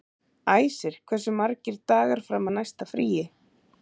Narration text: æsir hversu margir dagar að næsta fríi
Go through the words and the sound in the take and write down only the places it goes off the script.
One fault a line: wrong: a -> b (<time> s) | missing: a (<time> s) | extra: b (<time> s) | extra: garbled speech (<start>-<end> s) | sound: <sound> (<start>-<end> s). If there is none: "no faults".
extra: fram (2.3 s)